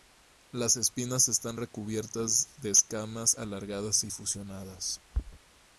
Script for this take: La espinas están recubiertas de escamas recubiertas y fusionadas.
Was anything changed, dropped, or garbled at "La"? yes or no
yes